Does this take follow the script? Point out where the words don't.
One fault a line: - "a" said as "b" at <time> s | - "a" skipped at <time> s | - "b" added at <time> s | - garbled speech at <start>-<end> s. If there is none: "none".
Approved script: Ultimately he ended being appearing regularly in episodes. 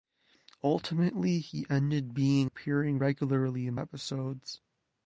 none